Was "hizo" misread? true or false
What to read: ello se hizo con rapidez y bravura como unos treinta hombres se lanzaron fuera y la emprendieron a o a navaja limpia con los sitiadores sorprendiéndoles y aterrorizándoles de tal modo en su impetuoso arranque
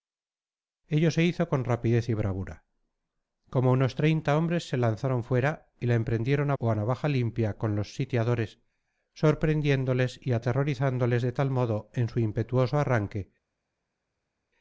false